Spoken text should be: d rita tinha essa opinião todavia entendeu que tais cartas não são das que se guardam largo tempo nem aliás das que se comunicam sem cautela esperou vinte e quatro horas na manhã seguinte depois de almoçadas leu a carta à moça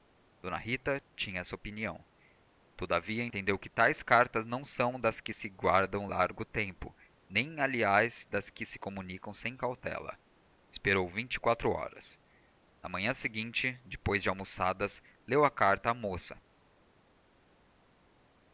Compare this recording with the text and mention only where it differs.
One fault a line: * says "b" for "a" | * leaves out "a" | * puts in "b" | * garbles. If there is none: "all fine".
all fine